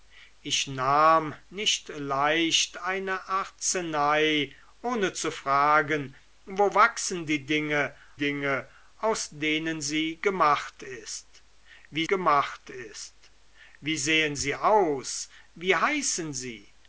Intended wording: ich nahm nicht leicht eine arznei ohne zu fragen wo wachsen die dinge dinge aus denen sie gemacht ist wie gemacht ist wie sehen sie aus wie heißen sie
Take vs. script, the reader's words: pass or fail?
pass